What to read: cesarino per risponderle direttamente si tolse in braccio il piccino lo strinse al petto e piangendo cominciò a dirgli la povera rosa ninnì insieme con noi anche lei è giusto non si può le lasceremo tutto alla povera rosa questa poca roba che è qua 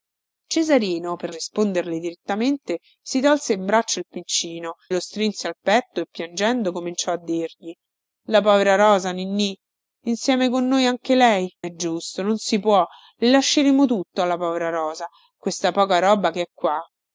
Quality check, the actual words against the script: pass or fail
pass